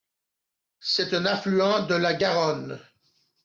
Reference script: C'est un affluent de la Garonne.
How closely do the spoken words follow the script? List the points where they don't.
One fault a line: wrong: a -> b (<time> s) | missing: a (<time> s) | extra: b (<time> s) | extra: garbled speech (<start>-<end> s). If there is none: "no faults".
no faults